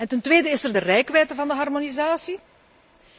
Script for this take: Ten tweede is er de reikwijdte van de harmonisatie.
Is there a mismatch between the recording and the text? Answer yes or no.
no